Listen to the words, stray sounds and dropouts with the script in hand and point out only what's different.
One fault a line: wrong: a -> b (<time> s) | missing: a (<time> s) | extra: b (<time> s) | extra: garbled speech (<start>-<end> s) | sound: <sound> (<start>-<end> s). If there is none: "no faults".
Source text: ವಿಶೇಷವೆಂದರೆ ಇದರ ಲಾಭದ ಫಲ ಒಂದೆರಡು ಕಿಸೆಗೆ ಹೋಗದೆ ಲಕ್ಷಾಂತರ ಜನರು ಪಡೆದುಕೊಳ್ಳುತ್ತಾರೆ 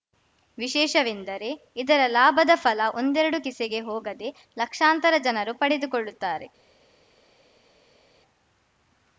no faults